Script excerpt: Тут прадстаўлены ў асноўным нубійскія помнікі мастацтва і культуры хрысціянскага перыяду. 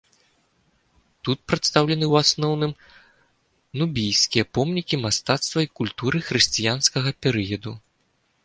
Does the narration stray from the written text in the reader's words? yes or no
no